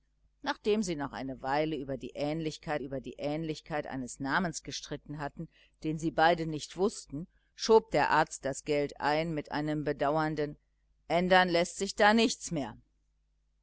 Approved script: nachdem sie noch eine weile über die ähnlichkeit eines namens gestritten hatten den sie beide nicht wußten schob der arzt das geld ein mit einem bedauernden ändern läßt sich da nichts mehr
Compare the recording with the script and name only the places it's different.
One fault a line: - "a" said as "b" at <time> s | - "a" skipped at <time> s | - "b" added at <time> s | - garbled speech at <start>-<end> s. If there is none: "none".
- "über die ähnlichkeit" added at 2.8 s